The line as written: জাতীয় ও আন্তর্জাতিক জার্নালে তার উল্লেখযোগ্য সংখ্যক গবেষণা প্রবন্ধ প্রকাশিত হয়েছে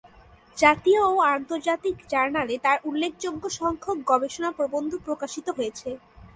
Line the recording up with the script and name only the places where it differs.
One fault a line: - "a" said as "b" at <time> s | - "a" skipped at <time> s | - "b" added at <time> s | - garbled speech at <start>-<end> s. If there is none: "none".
none